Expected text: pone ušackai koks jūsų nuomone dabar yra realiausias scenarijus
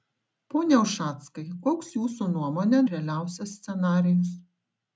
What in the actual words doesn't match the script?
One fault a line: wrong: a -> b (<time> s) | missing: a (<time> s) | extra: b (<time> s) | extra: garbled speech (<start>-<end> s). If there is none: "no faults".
missing: dabar yra (2.8 s)